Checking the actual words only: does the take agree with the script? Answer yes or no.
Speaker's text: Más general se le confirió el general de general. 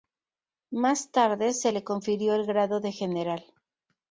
no